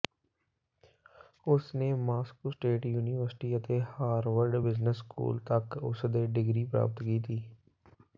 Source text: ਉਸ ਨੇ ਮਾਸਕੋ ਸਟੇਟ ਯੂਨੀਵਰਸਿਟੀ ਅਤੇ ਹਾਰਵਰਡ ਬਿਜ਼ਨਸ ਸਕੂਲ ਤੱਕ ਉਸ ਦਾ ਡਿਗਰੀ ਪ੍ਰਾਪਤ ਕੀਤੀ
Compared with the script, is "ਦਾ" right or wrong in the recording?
wrong